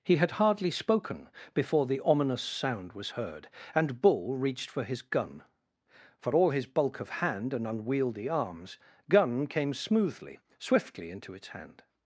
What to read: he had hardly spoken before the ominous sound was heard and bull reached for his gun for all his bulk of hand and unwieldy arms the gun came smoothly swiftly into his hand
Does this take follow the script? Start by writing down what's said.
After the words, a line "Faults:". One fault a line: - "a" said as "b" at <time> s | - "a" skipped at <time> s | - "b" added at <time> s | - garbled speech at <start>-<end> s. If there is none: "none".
he had hardly spoken before the ominous sound was heard and bull reached for his gun for all his bulk of hand and unwieldy arms gun came smoothly swiftly into its hand
Faults:
- "the" skipped at 8.8 s
- "his" said as "its" at 11.3 s